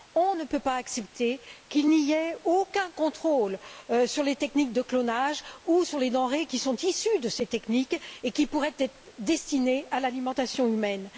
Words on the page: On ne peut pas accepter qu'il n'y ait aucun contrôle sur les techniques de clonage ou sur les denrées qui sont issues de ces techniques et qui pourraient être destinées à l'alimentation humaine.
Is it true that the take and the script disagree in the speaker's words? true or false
false